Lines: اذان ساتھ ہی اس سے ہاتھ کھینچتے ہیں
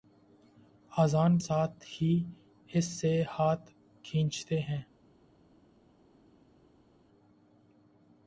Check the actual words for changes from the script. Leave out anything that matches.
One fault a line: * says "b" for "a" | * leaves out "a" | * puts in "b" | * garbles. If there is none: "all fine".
all fine